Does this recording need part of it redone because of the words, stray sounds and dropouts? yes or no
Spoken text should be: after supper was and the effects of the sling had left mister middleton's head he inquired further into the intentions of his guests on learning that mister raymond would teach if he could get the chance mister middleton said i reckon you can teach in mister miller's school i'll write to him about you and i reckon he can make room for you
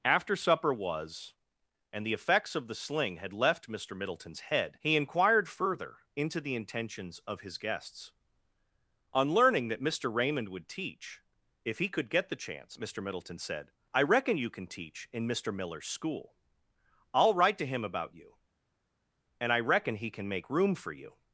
no